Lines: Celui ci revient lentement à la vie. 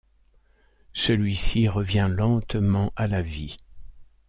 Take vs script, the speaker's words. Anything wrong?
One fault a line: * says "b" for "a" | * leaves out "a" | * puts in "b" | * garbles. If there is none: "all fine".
all fine